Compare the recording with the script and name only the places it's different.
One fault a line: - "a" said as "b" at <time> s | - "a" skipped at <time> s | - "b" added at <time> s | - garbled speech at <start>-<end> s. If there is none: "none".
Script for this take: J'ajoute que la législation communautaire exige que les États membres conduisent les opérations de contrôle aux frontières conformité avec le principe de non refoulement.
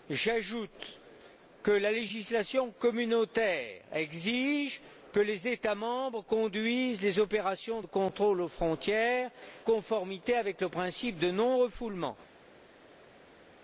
none